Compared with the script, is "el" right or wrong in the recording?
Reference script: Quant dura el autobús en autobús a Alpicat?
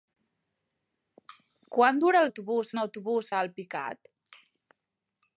right